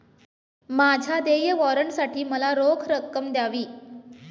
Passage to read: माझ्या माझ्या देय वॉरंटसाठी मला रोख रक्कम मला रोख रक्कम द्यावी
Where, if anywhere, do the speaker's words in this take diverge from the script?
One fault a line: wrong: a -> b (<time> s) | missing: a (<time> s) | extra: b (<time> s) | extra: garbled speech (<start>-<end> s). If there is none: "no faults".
missing: माझ्या (1.2 s)
missing: मला रोख रक्कम (3.3 s)